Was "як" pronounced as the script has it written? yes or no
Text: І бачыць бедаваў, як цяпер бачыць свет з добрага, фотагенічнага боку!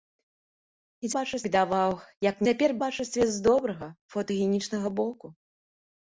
yes